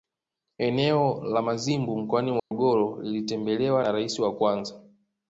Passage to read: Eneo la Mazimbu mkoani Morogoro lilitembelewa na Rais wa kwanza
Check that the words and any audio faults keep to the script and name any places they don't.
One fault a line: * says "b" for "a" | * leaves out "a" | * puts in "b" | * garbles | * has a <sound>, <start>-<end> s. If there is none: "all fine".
* has a dropout, 2.4-2.5 s